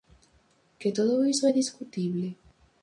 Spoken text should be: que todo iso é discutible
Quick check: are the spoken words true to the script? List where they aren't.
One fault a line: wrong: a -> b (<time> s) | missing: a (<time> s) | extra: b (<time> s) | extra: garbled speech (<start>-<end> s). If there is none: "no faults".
no faults